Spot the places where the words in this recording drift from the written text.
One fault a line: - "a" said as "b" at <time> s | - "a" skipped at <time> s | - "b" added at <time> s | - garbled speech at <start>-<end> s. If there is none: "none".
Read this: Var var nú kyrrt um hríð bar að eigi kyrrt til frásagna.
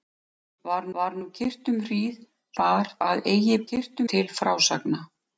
none